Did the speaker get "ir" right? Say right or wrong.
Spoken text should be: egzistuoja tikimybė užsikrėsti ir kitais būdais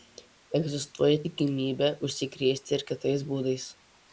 right